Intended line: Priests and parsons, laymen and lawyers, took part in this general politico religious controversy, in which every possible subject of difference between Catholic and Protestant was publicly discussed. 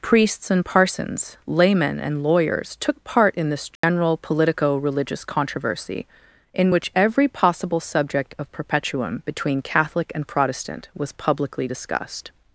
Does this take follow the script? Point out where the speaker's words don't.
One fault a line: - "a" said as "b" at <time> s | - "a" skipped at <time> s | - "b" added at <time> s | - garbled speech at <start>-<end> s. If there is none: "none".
- "difference" said as "perpetuum" at 8.5 s